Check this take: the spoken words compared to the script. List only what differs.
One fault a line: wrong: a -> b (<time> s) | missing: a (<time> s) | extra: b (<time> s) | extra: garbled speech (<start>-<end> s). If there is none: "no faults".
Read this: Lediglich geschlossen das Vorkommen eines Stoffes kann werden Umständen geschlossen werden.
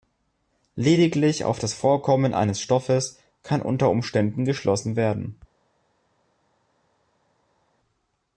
wrong: geschlossen -> auf (1.4 s)
wrong: werden -> unter (3.6 s)